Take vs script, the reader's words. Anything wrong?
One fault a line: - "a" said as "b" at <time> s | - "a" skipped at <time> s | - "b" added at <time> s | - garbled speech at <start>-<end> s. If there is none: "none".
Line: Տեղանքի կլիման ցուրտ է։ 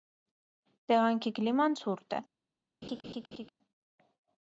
none